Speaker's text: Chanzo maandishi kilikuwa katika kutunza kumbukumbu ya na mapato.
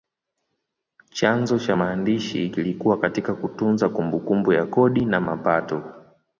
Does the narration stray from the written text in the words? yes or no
yes